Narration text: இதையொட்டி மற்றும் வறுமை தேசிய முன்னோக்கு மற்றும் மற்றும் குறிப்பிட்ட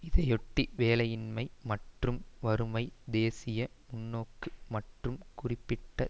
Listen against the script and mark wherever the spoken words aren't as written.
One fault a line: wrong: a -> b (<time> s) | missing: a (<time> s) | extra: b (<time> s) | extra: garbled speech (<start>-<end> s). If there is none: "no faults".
extra: வேலையின்மை (0.8 s)
missing: மற்றும் (5.2 s)